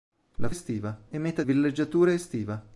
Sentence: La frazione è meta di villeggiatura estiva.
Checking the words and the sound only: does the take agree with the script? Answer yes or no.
no